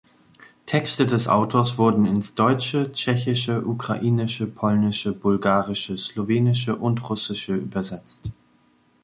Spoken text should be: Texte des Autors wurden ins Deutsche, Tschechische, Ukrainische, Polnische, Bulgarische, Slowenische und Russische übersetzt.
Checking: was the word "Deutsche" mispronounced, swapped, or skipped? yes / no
no